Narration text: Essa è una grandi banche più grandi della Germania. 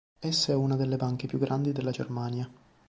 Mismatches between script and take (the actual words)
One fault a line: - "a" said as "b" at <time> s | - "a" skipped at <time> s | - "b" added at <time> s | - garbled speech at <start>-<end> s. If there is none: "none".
- "grandi" said as "delle" at 0.8 s